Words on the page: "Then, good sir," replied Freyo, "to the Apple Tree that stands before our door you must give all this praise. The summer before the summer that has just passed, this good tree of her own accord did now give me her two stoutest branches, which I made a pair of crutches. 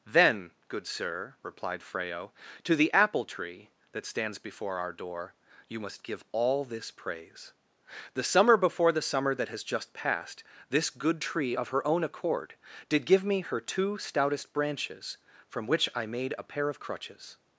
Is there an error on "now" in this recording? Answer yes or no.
yes